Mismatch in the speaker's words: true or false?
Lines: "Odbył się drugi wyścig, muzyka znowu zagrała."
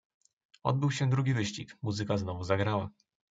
false